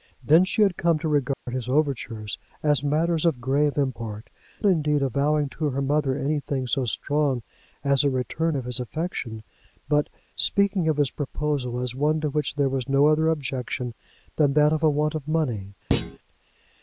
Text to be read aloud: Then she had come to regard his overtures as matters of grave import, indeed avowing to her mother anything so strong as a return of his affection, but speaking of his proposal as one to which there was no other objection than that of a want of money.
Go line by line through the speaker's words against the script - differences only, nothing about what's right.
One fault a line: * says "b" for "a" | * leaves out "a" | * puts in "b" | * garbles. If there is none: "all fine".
all fine